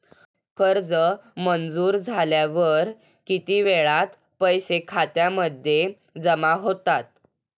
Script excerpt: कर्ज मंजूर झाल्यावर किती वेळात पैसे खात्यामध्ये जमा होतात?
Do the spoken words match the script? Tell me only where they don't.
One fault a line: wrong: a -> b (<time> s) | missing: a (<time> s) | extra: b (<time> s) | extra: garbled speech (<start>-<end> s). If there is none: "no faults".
no faults